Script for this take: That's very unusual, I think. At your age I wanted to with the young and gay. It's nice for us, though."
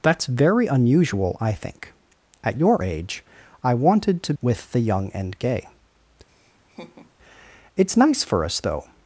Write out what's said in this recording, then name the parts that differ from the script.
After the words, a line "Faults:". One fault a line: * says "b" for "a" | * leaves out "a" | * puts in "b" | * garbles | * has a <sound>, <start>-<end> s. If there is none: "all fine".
That's very unusual, I think. At your age I wanted to with the young and gay. It's nice for us, though."
Faults:
* has a laugh, 6.3-7.1 s